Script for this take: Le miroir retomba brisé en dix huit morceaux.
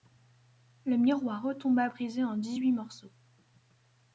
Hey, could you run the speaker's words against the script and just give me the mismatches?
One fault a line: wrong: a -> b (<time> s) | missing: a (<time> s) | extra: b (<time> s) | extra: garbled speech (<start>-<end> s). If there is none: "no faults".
no faults